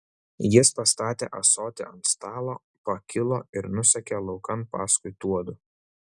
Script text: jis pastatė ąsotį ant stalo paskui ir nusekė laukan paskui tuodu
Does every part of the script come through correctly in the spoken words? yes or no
no